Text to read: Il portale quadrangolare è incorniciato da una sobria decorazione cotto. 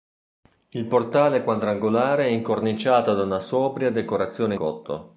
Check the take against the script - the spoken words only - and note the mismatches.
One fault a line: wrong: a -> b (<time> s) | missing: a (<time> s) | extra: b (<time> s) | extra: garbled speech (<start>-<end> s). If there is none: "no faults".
no faults